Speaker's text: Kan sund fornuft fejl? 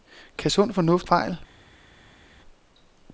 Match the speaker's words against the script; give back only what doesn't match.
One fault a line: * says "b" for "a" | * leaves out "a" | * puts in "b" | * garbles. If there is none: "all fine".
all fine